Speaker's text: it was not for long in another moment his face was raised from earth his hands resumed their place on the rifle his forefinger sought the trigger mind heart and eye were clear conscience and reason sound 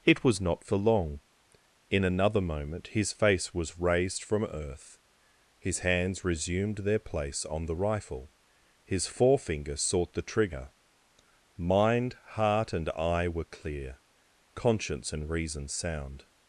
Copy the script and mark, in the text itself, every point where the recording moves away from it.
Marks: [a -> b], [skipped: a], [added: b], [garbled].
it was not for long in another moment his face was raised from earth his hands resumed their place on the rifle his forefinger sought the trigger mind heart and eye were clear conscience and reason sound